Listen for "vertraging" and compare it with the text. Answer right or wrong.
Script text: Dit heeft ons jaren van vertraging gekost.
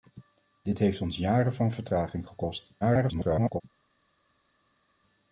right